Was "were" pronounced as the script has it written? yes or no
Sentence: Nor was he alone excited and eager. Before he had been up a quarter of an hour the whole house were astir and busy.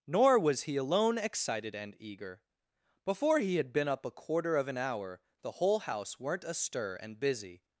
no